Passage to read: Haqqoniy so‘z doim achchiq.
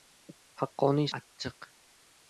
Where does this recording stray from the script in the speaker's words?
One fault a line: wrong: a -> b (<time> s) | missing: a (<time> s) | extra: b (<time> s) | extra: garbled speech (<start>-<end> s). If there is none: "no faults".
missing: so‘z doim (1.1 s)